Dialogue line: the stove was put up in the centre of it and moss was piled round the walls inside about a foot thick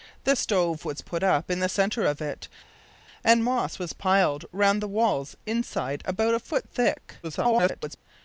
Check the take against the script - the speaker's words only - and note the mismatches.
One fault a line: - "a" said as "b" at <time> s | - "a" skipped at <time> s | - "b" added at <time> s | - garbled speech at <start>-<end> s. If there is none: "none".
- garbled speech at 7.2-8.0 s